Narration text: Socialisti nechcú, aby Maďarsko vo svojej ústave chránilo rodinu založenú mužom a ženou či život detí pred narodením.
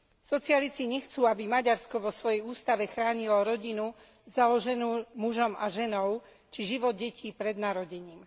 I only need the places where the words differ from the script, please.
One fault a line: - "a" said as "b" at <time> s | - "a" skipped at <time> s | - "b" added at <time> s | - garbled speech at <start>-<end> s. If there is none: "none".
none